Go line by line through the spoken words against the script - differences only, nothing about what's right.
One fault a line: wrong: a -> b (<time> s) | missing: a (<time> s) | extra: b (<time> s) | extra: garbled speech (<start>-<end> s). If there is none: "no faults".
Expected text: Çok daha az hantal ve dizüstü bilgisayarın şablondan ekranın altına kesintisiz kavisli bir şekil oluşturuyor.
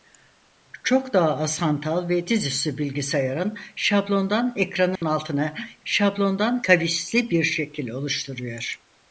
wrong: kesintisiz -> şablondan (5.8 s)